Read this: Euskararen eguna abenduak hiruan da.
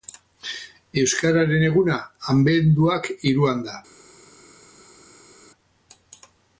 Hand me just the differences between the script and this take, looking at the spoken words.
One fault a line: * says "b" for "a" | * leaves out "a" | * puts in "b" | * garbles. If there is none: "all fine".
all fine